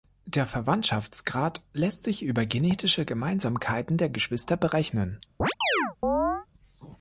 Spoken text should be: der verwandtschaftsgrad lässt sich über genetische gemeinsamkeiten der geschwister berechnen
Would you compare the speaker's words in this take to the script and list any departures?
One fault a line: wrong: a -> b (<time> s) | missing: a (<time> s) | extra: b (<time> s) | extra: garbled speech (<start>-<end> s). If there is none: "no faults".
no faults